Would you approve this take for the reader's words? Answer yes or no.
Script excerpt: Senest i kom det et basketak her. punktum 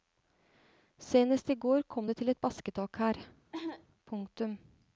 no